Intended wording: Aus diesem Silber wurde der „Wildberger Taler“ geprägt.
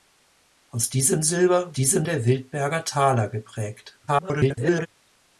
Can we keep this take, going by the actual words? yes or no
no